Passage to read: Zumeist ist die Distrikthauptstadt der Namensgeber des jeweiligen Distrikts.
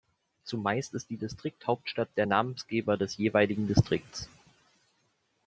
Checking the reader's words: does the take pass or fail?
pass